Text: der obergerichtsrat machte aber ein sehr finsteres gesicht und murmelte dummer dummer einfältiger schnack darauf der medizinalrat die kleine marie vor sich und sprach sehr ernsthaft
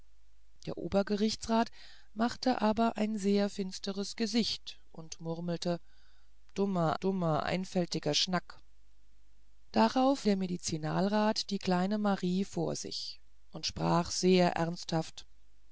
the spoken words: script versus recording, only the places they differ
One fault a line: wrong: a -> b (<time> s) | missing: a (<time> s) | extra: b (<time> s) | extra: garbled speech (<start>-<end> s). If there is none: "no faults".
no faults